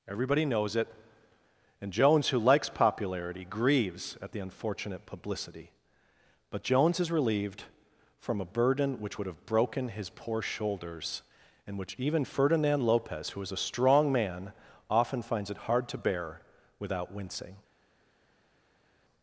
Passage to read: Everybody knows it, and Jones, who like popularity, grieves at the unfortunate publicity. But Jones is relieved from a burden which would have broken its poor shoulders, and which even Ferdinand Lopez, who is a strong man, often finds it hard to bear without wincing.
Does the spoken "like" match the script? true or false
false